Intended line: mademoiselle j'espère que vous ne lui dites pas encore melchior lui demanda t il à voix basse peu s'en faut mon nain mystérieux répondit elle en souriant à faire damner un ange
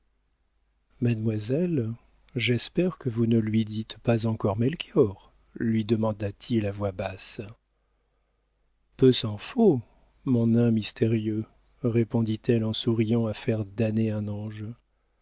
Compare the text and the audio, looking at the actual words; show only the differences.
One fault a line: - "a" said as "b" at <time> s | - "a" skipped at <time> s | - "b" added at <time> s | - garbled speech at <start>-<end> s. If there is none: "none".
none